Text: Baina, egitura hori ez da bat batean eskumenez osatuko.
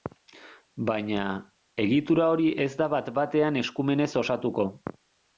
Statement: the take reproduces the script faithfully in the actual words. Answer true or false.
true